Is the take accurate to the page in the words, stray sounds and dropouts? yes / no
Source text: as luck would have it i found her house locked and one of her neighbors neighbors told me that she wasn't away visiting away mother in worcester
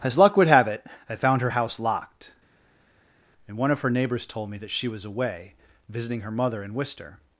no